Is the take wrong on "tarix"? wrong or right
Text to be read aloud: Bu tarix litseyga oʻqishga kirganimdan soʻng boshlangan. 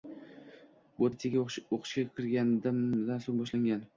wrong